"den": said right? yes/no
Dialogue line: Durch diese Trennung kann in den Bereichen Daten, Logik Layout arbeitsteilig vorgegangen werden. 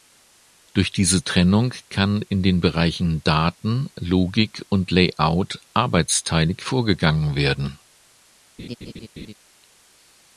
yes